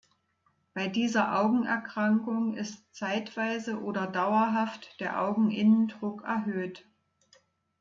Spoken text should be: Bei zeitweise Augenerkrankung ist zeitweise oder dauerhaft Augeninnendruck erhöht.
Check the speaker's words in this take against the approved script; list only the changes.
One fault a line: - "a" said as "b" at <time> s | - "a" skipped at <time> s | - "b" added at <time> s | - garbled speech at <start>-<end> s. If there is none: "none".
- "zeitweise" said as "dieser" at 0.9 s
- "der" added at 5.0 s